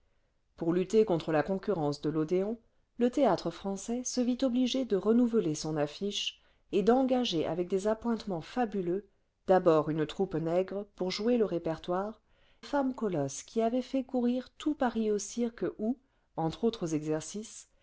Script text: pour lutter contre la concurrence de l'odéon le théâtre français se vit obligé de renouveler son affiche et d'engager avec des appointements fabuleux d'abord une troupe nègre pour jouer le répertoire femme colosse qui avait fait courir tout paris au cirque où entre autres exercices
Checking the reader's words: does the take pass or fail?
pass